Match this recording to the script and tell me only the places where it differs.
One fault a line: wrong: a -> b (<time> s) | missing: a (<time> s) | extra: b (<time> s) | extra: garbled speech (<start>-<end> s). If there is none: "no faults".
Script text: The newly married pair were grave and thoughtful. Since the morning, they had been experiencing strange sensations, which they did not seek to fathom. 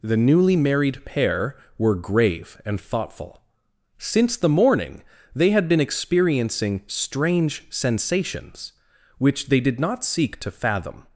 no faults